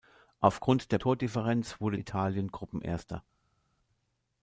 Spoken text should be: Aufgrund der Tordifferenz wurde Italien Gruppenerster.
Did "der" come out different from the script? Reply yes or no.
no